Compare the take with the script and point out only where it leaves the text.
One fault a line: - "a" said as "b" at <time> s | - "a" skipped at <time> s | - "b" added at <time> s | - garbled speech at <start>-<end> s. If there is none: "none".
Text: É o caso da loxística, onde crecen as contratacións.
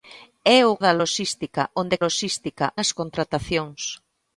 - "caso" skipped at 0.8 s
- "crecen" said as "loxística" at 2.0 s